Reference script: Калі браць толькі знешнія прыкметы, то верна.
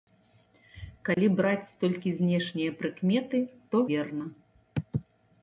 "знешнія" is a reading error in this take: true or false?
false